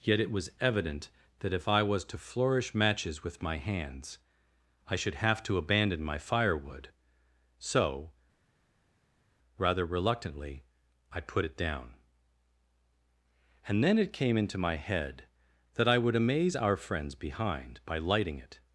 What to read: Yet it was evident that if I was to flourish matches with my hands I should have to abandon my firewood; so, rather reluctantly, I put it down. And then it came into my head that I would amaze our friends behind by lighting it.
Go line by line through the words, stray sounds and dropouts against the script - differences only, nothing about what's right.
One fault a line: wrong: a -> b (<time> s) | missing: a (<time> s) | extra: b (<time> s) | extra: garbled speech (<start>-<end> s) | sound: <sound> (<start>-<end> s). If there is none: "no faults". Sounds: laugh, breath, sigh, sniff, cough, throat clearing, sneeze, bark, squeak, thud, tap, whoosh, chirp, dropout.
no faults